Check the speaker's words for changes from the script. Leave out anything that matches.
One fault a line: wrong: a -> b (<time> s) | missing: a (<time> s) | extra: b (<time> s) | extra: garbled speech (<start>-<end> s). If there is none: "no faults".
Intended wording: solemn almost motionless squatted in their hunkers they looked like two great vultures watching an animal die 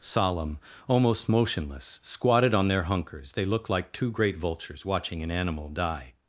wrong: in -> on (2.5 s)